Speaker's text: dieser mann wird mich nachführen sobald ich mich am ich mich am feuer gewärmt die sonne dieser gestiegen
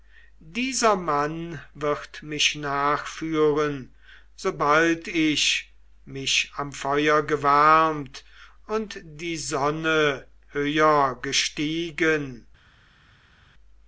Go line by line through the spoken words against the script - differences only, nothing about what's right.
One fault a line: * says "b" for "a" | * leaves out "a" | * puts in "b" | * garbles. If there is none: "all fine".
* leaves out "ich mich am"
* puts in "und"
* says "höher" for "dieser"